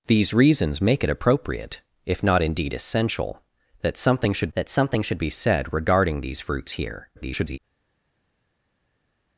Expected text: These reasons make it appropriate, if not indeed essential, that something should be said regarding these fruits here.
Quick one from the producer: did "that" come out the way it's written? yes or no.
yes